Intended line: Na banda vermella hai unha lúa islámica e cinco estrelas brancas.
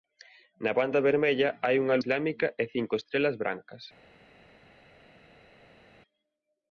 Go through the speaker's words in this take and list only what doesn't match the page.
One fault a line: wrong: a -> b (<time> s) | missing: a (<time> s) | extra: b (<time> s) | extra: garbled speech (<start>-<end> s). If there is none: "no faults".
missing: lúa (2.0 s)